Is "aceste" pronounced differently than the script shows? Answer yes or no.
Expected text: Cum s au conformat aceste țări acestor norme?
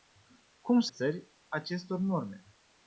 yes